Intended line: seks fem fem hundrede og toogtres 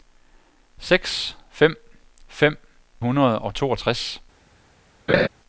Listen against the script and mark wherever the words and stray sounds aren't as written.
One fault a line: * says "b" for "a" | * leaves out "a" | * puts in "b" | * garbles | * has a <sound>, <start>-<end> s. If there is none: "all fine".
* has a laugh, 5.1-5.3 s